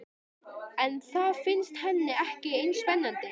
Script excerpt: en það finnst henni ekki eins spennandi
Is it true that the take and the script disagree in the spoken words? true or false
false